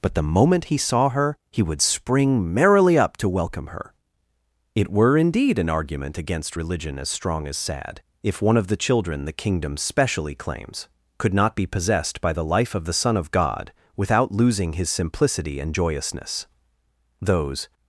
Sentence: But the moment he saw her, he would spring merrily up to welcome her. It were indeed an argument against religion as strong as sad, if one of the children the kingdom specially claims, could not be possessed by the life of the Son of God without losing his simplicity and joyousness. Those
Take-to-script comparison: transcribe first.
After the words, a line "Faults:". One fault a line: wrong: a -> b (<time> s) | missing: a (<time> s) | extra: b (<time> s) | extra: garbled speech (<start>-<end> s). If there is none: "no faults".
But the moment he saw her, he would spring merrily up to welcome her. It were indeed an argument against religion as strong as sad, if one of the children the kingdom specially claims, could not be possessed by the life of the Son of God without losing his simplicity and joyousness. Those
Faults:
no faults